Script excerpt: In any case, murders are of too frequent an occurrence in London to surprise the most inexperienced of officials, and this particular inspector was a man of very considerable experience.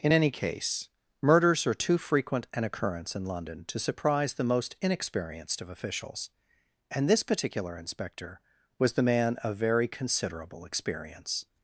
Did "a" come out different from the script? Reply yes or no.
yes